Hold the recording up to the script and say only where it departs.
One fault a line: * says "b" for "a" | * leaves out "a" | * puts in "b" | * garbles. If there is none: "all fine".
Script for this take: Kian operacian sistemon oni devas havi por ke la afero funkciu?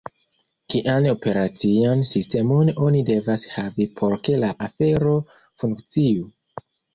all fine